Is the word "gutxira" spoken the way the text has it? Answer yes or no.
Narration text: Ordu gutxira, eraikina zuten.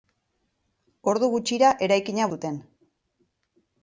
yes